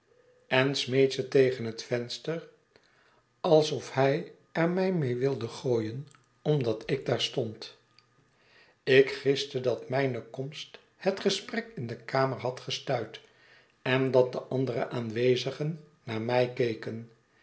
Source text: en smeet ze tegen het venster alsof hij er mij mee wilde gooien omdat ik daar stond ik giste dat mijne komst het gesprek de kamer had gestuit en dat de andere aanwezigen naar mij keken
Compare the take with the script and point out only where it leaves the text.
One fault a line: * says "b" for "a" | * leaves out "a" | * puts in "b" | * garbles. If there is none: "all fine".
* puts in "in"